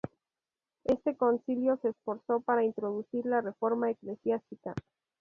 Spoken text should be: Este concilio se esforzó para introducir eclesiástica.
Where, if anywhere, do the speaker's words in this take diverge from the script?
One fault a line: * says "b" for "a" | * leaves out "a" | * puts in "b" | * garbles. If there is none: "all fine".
* puts in "la reforma"